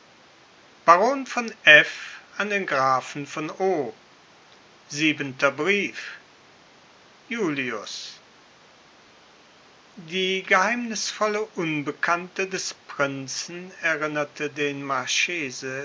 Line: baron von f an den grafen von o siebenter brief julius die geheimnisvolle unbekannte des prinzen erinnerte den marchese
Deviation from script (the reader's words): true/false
false